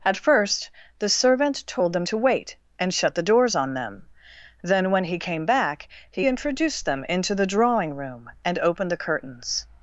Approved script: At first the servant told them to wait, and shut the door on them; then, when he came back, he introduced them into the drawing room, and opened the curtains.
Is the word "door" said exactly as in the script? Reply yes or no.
no